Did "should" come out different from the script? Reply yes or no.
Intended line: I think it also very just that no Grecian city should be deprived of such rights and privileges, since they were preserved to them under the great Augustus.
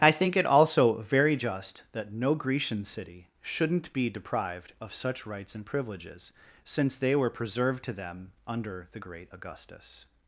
yes